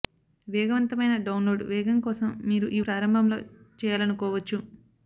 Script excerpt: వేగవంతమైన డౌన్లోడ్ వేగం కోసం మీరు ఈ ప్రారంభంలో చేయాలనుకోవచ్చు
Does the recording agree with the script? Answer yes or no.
yes